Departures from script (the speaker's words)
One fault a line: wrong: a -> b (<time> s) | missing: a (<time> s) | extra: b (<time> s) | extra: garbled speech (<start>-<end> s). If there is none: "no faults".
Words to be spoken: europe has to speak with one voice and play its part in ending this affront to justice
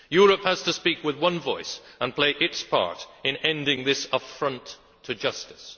no faults